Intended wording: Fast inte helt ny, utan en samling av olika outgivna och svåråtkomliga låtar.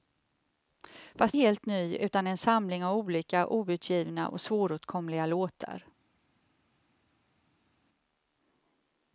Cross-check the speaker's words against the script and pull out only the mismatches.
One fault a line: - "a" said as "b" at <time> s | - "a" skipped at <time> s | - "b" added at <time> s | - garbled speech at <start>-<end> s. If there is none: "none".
- "inte" skipped at 1.4 s